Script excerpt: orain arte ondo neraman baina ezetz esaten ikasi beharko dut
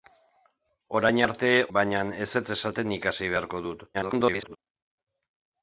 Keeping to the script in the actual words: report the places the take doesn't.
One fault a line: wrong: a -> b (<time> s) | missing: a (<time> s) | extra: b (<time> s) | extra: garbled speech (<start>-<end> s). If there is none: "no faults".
missing: ondo neraman (1.5 s)
extra: garbled speech (3.9-4.6 s)